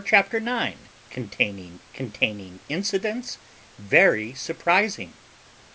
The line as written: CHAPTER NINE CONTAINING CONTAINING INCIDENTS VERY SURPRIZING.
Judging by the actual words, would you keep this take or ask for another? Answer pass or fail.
pass